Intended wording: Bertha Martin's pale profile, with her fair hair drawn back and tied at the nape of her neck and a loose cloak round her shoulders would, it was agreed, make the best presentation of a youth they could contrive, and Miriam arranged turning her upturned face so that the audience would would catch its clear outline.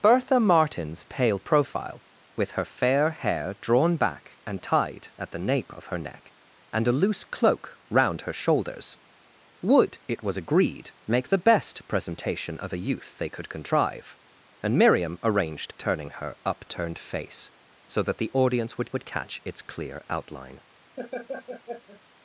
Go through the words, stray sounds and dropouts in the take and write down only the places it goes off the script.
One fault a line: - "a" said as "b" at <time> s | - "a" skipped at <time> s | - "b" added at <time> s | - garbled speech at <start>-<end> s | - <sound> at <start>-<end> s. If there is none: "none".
- laugh at 21.0-22.0 s